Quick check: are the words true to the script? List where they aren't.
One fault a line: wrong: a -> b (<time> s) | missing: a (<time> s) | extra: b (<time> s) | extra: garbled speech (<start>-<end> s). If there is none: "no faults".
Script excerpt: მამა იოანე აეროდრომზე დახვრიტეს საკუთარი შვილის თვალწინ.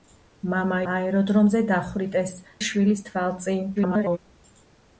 missing: იოანე (0.8 s)
missing: საკუთარი (2.3 s)
extra: garbled speech (3.8-4.2 s)